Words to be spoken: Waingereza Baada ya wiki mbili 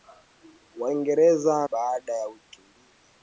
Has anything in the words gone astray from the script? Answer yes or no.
no